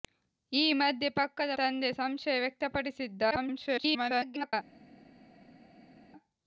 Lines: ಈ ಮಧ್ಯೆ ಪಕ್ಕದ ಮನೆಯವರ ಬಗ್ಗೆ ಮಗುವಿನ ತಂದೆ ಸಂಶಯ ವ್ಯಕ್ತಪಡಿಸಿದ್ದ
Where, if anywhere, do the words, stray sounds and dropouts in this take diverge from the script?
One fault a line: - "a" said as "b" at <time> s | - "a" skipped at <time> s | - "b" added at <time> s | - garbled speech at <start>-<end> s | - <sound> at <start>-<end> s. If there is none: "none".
- "ಮನೆಯವರ ಬಗ್ಗೆ ಮಗುವಿನ" skipped at 1.6 s
- garbled speech at 3.3-4.5 s